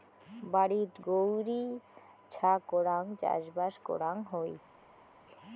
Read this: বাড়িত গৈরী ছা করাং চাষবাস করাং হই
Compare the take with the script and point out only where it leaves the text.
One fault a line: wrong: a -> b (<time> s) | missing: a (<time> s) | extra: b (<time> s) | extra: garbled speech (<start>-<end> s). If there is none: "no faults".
no faults